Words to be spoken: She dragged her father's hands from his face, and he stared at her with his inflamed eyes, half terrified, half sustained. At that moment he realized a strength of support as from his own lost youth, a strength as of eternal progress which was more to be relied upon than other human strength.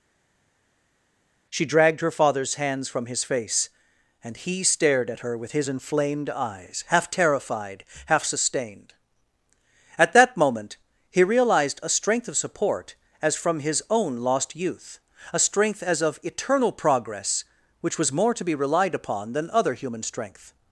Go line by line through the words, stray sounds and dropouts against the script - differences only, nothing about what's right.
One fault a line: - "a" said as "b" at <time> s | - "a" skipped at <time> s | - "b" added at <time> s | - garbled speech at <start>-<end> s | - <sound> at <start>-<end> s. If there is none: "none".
none